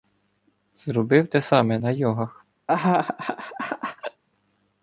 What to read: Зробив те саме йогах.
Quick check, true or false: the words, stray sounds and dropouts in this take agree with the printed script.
false